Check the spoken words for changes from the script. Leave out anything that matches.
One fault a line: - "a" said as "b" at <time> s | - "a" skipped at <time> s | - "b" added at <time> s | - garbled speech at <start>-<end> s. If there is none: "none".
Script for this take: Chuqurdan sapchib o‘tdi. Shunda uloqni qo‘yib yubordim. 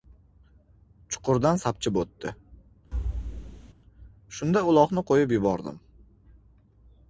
none